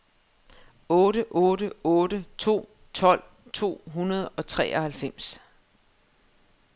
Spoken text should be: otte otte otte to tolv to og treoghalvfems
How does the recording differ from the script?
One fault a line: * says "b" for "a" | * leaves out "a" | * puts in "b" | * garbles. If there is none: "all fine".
* puts in "hundrede"